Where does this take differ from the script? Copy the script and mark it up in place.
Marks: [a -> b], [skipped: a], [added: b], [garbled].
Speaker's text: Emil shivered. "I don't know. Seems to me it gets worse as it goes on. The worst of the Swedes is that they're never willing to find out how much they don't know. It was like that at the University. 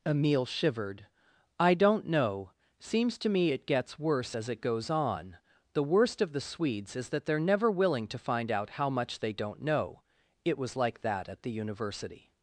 Emil shivered. "I don't know. Seems to me it gets worse as it goes on. The worst of the Swedes is that they're never willing to find out how much they don't know. It was like that at the University.